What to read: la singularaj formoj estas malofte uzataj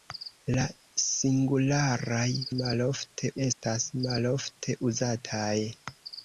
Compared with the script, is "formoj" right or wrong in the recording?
wrong